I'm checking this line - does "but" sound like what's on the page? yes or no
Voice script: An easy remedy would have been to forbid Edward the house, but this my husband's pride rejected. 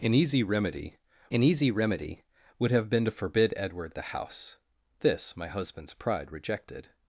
no